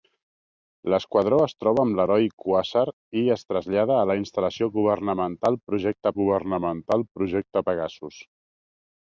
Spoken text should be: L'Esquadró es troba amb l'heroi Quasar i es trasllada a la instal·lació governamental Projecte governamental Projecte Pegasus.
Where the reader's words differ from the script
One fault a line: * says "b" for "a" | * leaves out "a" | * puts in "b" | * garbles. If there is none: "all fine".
all fine